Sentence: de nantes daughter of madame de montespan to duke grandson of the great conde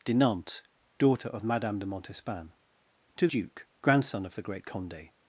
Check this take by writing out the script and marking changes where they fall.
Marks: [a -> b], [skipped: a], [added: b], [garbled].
de nantes daughter of madame de montespan to duke grandson of the great conde